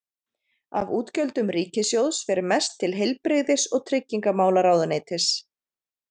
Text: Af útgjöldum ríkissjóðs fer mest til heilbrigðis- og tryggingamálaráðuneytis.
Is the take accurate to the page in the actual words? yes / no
yes